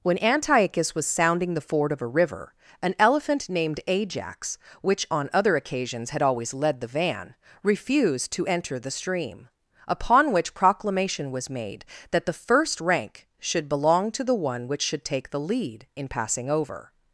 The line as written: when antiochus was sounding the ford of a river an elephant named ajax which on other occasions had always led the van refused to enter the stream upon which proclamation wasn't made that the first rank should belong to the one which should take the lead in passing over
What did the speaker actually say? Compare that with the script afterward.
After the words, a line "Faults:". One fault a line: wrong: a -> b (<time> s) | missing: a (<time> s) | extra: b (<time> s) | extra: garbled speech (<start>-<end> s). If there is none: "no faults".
when antiochus was sounding the ford of a river an elephant named ajax which on other occasions had always led the van refused to enter the stream upon which proclamation was made that the first rank should belong to the one which should take the lead in passing over
Faults:
wrong: wasn't -> was (11.3 s)